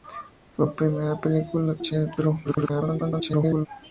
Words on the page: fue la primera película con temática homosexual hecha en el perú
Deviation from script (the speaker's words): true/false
true